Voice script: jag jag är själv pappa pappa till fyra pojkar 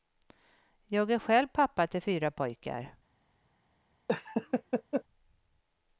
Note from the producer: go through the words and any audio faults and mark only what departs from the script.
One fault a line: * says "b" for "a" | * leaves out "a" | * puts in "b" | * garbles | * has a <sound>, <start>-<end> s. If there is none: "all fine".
* leaves out "jag"
* leaves out "pappa"
* has a laugh, 4.1-5.0 s